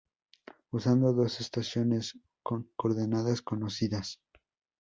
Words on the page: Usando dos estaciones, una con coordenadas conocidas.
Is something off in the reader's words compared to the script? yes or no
yes